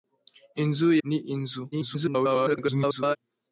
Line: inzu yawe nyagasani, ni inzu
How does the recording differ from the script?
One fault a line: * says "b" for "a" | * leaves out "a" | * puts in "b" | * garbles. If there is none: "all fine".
* leaves out "yawe nyagasani"
* garbles